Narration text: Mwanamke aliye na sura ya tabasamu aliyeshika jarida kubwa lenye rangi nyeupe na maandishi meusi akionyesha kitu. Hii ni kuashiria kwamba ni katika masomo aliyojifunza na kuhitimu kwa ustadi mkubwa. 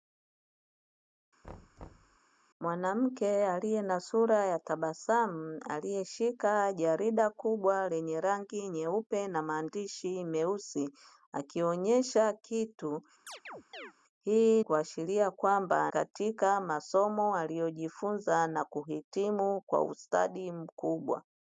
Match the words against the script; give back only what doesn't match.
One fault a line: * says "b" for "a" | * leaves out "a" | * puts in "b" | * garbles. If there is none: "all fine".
* leaves out "ni"
* leaves out "ni"